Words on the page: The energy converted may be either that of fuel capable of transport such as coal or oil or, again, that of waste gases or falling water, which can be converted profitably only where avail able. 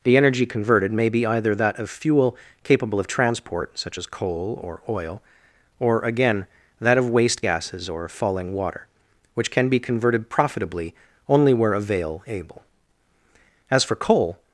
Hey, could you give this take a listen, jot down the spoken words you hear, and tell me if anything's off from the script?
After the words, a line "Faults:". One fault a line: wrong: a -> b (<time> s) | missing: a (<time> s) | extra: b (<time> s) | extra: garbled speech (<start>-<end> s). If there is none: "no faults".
The energy converted may be either that of fuel capable of transport such as coal or oil or, again, that of waste gases or falling water, which can be converted profitably only where avail able. As for coal
Faults:
extra: As for coal (13.7 s)